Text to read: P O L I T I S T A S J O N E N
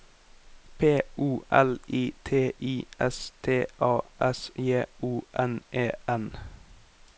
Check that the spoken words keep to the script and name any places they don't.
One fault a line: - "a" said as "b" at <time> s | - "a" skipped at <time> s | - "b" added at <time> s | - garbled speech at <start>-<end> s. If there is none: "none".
none